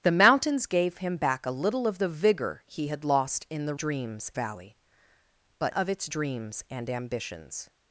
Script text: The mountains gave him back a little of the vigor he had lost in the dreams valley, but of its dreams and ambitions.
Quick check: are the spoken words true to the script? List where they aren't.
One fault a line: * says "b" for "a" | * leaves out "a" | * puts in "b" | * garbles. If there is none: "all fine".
all fine